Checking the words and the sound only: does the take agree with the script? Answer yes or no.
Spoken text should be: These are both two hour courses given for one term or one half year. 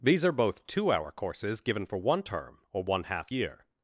yes